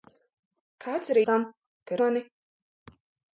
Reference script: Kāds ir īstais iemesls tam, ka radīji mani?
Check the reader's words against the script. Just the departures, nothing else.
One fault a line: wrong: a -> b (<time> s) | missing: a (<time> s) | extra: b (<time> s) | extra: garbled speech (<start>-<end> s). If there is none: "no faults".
missing: īstais iemesls (1.2 s)
missing: radīji (2.0 s)